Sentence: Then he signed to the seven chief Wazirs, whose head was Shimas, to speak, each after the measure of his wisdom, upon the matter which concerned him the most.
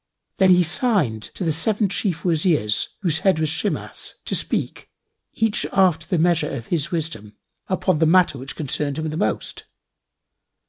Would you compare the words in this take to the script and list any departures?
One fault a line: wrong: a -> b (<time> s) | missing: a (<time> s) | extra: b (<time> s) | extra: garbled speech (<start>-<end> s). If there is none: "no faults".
no faults